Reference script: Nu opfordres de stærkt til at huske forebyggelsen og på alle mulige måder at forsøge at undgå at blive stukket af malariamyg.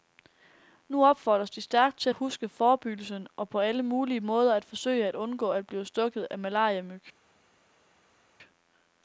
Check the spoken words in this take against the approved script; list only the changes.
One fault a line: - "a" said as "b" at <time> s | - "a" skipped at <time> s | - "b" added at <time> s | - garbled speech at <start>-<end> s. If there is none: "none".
none